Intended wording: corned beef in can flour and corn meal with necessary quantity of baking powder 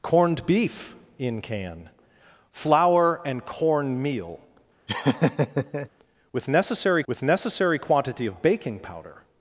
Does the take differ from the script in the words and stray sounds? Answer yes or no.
yes